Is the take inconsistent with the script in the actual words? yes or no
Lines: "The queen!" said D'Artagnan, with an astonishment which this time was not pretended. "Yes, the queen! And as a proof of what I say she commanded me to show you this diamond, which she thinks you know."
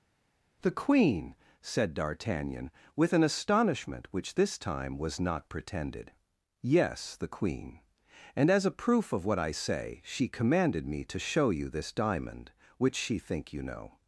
yes